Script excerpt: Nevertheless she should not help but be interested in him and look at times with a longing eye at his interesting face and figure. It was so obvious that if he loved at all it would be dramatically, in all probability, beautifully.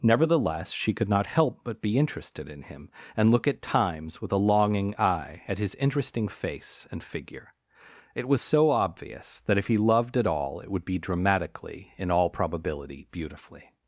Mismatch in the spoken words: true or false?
true